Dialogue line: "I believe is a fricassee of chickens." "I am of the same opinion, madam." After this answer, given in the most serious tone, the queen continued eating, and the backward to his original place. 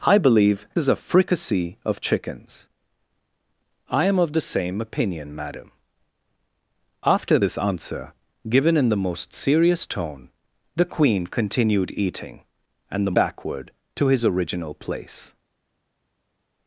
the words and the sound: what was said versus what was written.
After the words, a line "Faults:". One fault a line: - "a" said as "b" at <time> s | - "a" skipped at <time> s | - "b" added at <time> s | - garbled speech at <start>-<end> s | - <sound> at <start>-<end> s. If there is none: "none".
"I believe is a fricassee of chickens." "I am of the same opinion, madam." After this answer, given in the most serious tone, the queen continued eating, and the backward to his original place.
Faults:
none